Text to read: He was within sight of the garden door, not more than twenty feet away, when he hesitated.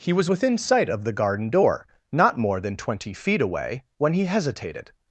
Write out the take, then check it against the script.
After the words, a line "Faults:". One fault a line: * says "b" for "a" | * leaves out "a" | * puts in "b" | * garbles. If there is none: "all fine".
He was within sight of the garden door, not more than twenty feet away, when he hesitated.
Faults:
all fine